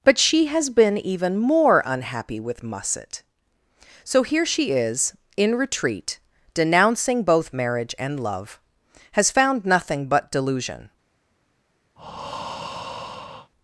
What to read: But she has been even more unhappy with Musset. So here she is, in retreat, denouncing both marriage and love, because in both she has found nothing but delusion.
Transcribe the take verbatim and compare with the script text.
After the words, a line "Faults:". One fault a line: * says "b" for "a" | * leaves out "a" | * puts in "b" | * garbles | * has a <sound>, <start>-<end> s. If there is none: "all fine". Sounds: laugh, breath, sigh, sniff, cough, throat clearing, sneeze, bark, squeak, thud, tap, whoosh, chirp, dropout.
But she has been even more unhappy with Musset. So here she is, in retreat, denouncing both marriage and love, has found nothing but delusion.
Faults:
* leaves out "because in both she"
* has a breath, 12.0-13.5 s